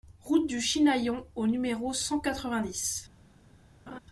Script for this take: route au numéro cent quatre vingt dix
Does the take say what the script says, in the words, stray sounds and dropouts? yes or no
no